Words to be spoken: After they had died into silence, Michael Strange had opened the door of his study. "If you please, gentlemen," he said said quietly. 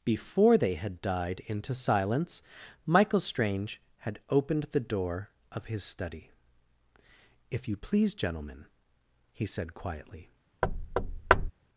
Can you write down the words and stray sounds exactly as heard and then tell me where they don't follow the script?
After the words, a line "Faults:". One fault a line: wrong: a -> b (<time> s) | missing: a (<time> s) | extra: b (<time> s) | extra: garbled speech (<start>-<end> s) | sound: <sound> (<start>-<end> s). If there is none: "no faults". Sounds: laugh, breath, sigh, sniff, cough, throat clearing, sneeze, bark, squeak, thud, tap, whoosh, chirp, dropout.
Before they had died into silence, Michael Strange had opened the door of his study. "If you please, gentlemen," he said quietly.
Faults:
wrong: After -> Before (0.0 s)
missing: said (9.7 s)
sound: thud (10.6-11.5 s)